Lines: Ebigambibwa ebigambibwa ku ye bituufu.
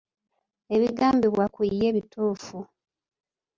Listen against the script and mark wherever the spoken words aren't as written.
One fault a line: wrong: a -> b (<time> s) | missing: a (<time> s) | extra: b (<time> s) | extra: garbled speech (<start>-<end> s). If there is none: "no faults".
missing: ebigambibwa (1.4 s)